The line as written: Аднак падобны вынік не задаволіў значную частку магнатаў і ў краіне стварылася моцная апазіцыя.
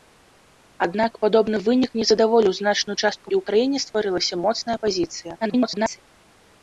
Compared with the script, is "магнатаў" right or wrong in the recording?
wrong